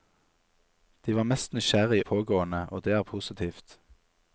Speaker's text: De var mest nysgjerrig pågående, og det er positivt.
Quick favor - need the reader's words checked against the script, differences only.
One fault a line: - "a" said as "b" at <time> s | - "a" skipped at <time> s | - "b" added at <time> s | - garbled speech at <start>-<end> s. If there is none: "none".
none